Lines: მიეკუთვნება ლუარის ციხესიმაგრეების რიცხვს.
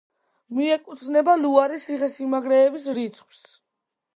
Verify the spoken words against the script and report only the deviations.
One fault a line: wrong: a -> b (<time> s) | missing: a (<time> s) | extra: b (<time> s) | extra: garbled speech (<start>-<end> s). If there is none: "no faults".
no faults